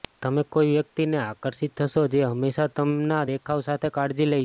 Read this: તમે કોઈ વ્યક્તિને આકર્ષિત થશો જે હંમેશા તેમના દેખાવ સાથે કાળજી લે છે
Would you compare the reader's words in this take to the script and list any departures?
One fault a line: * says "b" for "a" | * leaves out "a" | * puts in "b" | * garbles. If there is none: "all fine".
all fine